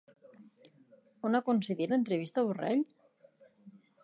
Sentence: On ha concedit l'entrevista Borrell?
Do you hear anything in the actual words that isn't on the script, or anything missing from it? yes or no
no